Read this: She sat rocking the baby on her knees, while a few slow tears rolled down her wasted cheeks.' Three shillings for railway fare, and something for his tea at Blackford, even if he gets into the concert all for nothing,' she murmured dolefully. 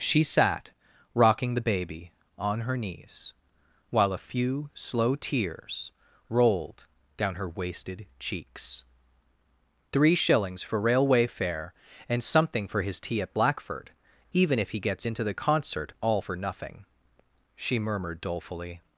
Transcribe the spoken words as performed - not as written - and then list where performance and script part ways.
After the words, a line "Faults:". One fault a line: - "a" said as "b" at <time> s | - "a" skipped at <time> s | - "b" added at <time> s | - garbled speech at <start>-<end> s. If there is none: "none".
She sat rocking the baby on her knees, while a few slow tears rolled down her wasted cheeks.' Three shillings for railway fare, and something for his tea at Blackford, even if he gets into the concert all for nothing,' she murmured dolefully.
Faults:
none